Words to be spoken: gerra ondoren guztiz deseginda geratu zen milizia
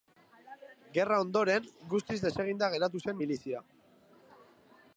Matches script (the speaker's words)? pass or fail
pass